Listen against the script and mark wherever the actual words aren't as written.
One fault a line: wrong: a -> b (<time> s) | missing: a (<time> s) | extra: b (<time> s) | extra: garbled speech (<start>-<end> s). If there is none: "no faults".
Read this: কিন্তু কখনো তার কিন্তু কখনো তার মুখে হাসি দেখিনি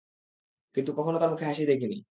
missing: কিন্তু কখনো তার (1.3 s)